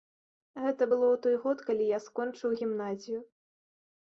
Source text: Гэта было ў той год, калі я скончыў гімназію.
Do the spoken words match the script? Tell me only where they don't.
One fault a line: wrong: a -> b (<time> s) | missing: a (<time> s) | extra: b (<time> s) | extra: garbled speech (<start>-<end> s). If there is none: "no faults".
no faults